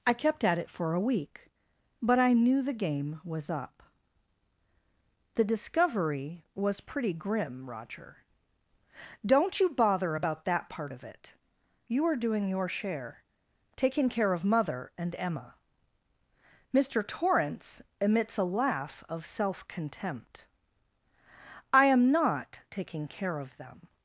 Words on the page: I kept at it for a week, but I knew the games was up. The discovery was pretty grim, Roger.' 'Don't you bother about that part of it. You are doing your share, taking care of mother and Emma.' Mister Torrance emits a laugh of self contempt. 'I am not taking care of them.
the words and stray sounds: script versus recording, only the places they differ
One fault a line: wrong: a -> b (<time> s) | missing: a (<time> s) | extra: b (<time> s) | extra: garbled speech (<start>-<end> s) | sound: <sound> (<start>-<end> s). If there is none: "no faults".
wrong: games -> game (2.7 s)